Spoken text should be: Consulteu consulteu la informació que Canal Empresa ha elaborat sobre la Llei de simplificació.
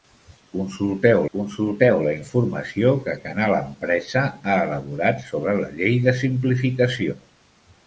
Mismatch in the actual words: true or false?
false